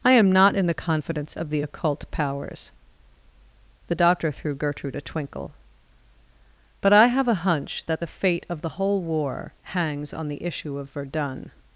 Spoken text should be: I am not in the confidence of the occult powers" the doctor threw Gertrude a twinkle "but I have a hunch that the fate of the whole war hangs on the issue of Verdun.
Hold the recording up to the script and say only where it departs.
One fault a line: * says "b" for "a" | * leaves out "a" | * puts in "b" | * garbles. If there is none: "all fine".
all fine